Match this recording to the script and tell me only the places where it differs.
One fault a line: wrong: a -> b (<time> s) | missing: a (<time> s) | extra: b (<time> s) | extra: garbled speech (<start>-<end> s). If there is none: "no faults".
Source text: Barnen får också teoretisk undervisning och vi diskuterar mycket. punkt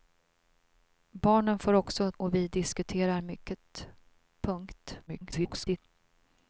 missing: teoretisk undervisning (2.1 s)
extra: garbled speech (5.1-5.8 s)